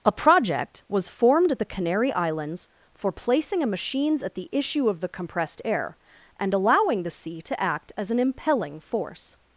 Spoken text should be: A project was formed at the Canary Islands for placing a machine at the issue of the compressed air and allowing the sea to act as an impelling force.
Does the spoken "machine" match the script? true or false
false